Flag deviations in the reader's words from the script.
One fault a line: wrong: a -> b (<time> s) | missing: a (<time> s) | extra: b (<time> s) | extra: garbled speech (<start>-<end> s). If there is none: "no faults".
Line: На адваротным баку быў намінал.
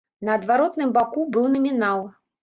no faults